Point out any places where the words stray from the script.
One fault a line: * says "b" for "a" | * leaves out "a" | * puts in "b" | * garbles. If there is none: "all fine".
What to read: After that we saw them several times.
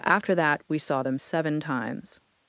* says "seven" for "several"